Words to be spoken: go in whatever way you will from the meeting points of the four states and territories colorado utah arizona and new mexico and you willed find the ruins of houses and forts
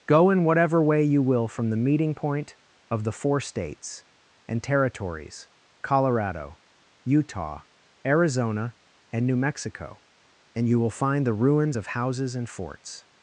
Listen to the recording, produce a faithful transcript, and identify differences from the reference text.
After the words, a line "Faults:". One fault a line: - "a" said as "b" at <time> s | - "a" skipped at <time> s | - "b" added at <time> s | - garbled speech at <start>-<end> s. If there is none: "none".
go in whatever way you will from the meeting point of the four states and territories colorado utah arizona and new mexico and you will find the ruins of houses and forts
Faults:
- "points" said as "point" at 2.1 s
- "willed" said as "will" at 10.8 s